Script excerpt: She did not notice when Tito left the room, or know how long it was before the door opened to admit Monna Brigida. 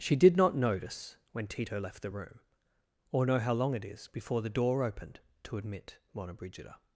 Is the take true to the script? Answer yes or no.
no